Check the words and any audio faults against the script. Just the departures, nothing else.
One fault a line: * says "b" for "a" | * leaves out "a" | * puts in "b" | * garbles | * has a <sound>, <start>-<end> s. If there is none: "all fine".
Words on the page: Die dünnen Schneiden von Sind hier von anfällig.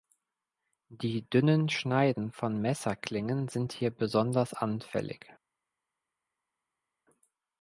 * puts in "Messerklingen"
* says "besonders" for "von"